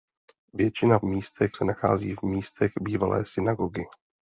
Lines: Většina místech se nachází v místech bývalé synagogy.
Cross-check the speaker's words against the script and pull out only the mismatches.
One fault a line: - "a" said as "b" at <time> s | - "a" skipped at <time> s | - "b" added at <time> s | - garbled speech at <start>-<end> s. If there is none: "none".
none